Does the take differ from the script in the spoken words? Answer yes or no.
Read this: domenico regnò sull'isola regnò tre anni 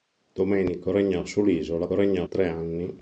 no